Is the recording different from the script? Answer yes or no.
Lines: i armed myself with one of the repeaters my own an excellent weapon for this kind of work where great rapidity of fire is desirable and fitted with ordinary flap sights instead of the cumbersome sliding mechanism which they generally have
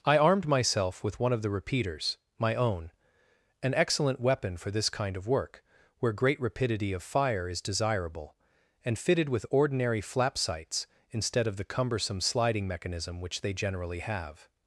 no